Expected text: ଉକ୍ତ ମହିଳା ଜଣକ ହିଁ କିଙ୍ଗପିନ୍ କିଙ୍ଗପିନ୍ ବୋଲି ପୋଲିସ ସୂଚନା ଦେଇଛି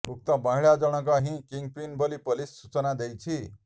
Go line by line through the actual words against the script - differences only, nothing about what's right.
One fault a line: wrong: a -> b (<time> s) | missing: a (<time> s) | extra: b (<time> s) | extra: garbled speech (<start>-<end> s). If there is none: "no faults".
missing: କିଙ୍ଗପିନ୍ (2.0 s)